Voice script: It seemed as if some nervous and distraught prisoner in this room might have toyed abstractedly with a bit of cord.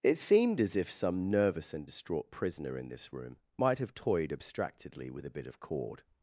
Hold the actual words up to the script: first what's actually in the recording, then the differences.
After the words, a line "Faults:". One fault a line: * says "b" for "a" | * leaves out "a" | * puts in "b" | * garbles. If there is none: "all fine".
It seemed as if some nervous and distraught prisoner in this room might have toyed abstractedly with a bit of cord.
Faults:
all fine